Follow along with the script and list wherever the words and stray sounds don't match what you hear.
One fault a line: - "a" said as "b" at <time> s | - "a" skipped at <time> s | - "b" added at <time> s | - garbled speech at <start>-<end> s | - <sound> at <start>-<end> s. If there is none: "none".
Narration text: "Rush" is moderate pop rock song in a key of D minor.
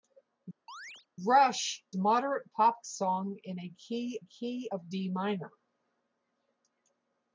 - chirp at 0.7-1.1 s
- "is" skipped at 1.9 s
- "rock" skipped at 2.8 s
- "key" added at 4.2 s